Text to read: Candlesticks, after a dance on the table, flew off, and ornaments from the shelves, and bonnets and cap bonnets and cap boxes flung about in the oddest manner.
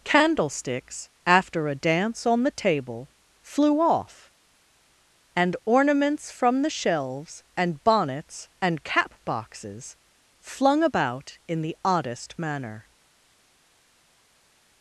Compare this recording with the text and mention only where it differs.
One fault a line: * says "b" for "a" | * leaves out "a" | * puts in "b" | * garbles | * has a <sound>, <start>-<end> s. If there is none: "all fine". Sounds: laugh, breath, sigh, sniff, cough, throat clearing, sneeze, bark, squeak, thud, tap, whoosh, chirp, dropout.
* leaves out "bonnets and cap"